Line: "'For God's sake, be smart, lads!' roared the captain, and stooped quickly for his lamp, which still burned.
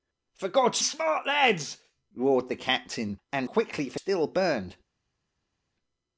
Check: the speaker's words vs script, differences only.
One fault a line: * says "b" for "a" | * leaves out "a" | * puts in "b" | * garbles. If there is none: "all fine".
* leaves out "sake be"
* leaves out "stooped"
* leaves out "his lamp which"